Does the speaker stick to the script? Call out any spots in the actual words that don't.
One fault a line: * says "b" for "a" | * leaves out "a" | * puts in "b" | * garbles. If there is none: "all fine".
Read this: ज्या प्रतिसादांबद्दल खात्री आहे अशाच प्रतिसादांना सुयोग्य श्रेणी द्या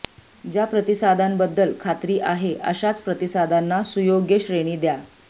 all fine